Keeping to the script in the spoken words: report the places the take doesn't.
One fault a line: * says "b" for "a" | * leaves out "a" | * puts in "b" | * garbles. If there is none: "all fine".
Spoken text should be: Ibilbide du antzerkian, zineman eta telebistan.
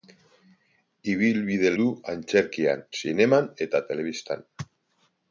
all fine